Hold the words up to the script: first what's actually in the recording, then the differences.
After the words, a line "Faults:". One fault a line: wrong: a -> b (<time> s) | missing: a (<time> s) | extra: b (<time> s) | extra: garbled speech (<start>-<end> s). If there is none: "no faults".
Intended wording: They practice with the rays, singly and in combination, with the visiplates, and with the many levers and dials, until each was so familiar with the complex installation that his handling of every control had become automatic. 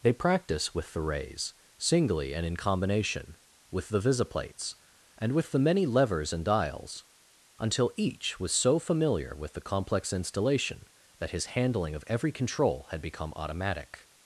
They practice with the rays, singly and in combination, with the visiplates, and with the many levers and dials, until each was so familiar with the complex installation that his handling of every control had become automatic.
Faults:
no faults